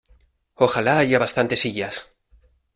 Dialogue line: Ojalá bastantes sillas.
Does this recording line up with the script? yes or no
no